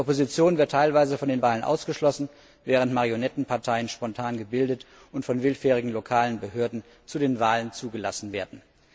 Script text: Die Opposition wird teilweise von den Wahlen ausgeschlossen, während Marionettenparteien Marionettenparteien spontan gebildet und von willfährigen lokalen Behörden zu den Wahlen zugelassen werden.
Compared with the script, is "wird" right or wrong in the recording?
right